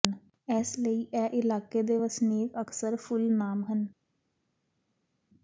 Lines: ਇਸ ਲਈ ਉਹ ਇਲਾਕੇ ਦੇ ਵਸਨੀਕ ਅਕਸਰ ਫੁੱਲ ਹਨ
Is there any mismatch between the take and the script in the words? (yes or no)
yes